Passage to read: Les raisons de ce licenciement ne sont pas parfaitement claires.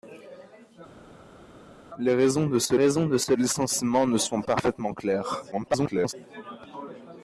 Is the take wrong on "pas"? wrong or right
wrong